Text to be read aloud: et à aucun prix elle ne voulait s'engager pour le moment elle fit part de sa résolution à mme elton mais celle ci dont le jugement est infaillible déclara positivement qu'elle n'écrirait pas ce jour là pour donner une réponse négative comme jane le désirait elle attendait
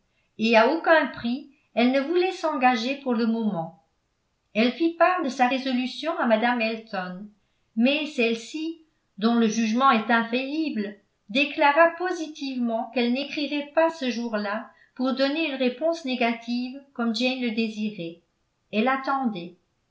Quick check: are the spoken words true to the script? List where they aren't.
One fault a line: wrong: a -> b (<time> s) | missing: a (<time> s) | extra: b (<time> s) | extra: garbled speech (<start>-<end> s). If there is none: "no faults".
no faults